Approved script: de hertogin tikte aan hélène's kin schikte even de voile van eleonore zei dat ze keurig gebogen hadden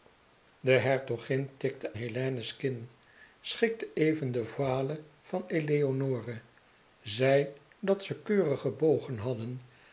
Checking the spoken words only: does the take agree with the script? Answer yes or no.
no